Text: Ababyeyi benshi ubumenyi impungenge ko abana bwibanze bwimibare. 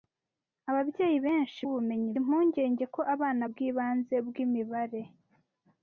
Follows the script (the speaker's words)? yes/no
yes